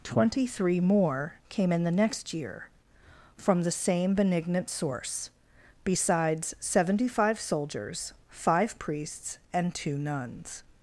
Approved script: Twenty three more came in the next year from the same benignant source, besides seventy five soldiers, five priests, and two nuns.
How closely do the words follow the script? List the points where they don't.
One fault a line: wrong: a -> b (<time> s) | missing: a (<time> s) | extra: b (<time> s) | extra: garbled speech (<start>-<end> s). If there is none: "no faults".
no faults